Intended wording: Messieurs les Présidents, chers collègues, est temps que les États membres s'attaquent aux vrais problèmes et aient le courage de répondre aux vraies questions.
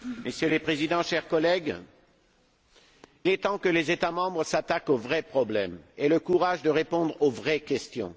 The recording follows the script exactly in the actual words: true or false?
true